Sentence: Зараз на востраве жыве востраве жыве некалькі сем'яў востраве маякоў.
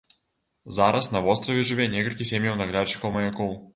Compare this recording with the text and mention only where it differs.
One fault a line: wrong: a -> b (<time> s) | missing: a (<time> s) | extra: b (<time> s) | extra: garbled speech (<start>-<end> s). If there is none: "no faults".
missing: востраве жыве (1.9 s)
wrong: востраве -> наглядчыкаў (2.6 s)